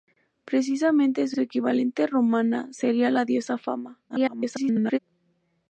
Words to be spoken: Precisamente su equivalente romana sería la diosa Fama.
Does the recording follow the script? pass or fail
fail